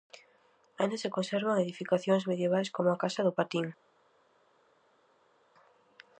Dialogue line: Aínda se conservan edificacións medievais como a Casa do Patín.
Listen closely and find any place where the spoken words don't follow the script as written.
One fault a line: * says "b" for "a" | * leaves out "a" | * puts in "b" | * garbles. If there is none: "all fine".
all fine